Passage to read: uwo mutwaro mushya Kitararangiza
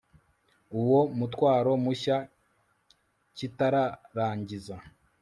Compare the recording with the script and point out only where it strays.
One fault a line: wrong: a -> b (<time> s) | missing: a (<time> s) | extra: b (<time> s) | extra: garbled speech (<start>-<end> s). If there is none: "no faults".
no faults